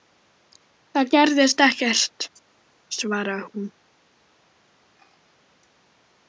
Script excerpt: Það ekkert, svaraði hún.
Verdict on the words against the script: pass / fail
fail